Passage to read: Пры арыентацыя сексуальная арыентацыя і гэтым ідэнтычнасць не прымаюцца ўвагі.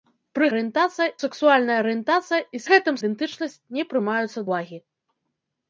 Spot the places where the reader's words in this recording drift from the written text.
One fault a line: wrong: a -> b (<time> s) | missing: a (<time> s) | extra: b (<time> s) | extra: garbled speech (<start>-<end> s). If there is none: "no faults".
no faults